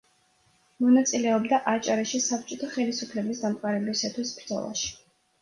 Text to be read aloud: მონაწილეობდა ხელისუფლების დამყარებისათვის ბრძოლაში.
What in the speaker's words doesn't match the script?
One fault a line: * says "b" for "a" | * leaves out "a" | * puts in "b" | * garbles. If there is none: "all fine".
* puts in "აჭარაში საბჭოთა"